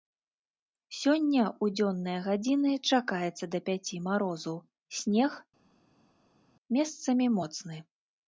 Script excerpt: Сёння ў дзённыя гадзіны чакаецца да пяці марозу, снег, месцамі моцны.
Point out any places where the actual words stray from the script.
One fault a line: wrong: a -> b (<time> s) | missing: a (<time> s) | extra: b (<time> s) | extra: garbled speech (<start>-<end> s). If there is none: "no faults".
no faults